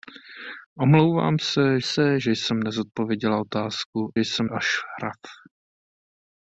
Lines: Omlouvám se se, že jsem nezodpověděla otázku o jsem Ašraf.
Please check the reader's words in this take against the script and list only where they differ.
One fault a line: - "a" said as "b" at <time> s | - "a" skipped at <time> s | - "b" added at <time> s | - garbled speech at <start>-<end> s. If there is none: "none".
none